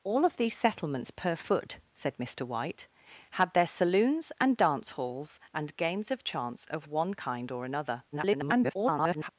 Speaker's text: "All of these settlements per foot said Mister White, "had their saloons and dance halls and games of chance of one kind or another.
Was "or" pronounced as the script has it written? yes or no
yes